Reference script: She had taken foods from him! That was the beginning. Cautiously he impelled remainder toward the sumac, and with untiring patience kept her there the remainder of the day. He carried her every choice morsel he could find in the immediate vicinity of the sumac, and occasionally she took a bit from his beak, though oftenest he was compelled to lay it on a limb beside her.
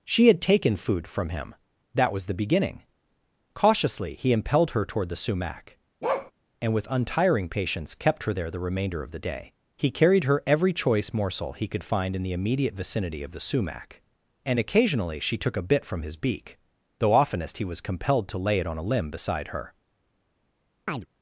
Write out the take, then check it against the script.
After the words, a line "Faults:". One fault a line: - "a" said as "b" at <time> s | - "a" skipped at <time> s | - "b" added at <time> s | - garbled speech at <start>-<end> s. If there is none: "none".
She had taken food from him! That was the beginning. Cautiously he impelled her toward the sumac, and with untiring patience kept her there the remainder of the day. He carried her every choice morsel he could find in the immediate vicinity of the sumac, and occasionally she took a bit from his beak, though oftenest he was compelled to lay it on a limb beside her.
Faults:
- "foods" said as "food" at 0.8 s
- "remainder" said as "her" at 4.7 s